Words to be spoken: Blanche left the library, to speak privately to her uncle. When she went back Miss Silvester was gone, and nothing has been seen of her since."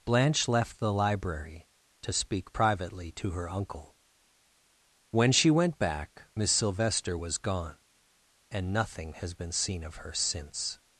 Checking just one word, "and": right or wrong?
right